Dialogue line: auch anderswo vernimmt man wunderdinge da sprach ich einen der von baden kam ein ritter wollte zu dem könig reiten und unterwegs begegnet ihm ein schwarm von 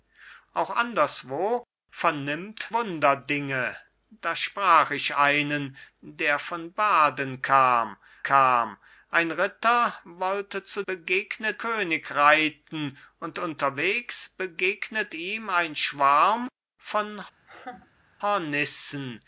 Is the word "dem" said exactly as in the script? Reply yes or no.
no